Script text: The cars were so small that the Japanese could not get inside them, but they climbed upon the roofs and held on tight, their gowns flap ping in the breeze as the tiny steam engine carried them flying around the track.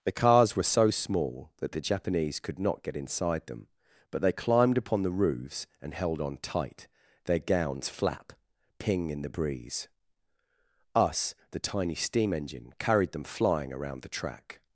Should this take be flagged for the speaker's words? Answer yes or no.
yes